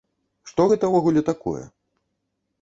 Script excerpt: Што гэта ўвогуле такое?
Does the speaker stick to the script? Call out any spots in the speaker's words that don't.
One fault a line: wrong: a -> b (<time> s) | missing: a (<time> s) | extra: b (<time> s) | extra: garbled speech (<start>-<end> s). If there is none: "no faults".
no faults